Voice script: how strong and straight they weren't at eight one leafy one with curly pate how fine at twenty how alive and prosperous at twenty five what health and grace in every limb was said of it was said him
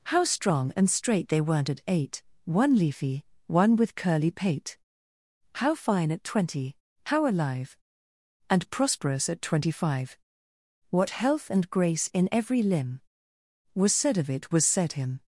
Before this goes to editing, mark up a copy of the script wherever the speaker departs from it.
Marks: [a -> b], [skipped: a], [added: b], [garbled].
how strong and straight they weren't at eight one leafy one with curly pate how fine at twenty how alive and prosperous at twenty five what health and grace in every limb was said of it was said him